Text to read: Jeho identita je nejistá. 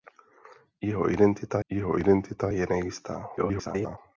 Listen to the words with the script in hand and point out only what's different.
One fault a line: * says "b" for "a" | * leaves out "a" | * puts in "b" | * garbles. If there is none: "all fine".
* puts in "jeho identita"
* garbles